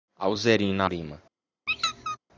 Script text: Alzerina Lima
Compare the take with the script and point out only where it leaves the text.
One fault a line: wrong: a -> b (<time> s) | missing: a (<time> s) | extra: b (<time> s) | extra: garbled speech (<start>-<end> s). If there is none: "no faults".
no faults